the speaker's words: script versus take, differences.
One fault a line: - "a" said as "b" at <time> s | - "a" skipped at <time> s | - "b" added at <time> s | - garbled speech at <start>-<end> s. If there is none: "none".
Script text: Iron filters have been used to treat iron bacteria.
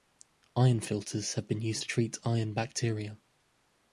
none